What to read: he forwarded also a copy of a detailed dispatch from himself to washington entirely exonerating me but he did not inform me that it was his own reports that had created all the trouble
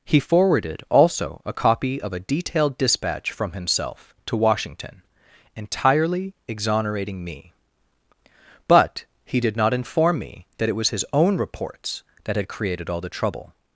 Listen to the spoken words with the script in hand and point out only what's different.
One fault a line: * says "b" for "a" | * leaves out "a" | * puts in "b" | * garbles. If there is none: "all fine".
all fine